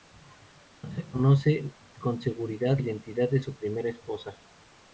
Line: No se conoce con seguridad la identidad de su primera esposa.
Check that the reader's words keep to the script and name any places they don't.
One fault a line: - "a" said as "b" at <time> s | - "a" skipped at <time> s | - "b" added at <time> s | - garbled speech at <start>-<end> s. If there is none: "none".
- "la" skipped at 2.8 s